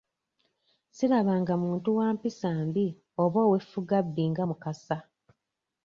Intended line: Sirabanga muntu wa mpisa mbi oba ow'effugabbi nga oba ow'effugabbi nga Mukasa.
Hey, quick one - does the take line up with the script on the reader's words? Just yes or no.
no